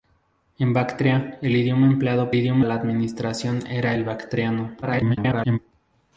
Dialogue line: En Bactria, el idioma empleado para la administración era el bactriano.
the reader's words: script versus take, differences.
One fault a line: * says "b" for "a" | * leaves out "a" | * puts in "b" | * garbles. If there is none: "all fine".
* says "idioma" for "para"
* garbles